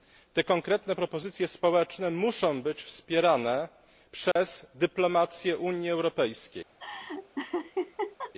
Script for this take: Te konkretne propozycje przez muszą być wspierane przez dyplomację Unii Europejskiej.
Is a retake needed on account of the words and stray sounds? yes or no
yes